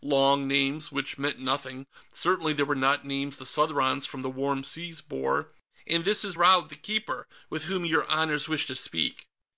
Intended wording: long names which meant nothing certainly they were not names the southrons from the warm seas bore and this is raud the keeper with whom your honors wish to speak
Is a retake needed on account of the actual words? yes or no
no